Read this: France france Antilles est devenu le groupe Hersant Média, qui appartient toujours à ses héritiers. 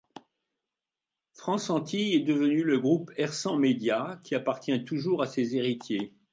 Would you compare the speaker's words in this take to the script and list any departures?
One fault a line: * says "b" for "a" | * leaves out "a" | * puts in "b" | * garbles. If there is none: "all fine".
* leaves out "france"